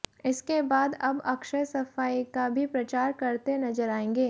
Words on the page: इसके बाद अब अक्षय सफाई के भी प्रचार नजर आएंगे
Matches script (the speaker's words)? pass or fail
fail